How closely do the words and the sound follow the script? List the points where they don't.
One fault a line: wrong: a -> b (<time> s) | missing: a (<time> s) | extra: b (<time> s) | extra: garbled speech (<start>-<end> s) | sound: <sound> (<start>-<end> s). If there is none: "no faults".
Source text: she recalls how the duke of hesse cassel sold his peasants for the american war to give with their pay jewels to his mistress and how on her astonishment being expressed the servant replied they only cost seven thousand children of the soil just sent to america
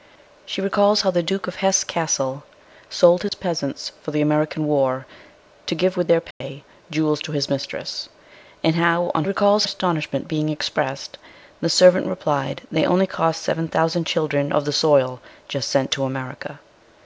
sound: dropout (3.3-3.3 s)
sound: dropout (6.3-6.4 s)
wrong: her -> recalls (9.2 s)